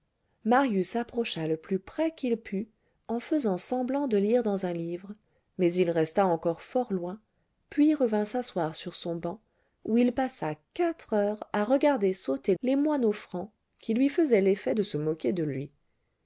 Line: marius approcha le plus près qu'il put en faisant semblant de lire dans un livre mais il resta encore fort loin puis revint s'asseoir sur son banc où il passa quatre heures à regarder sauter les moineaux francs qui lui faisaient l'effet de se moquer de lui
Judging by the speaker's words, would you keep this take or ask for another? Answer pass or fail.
pass